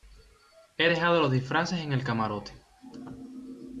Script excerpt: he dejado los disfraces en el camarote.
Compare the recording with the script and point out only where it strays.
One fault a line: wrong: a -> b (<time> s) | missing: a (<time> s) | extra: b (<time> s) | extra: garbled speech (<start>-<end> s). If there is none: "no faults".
no faults